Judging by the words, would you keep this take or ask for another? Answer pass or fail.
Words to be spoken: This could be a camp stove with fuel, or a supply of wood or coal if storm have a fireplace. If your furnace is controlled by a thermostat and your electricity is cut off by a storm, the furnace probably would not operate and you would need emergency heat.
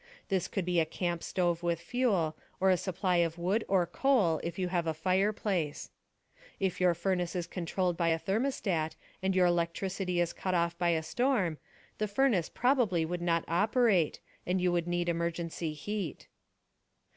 fail